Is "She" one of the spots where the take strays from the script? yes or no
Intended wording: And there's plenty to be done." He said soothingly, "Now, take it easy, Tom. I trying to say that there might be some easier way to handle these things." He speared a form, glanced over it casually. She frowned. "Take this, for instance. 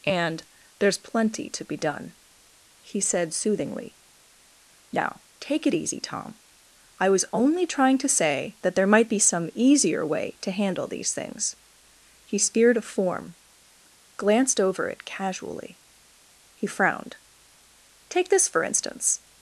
yes